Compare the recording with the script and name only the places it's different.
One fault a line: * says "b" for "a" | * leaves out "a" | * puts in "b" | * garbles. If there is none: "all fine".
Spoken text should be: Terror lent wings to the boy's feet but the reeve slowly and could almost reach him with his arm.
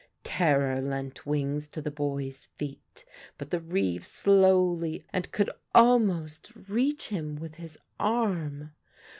all fine